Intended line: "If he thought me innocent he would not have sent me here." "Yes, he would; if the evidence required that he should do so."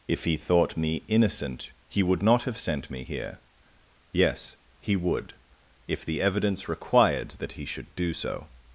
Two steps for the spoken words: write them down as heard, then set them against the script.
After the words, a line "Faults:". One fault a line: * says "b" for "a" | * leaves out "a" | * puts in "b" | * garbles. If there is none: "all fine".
"If he thought me innocent he would not have sent me here." "Yes, he would; if the evidence required that he should do so."
Faults:
all fine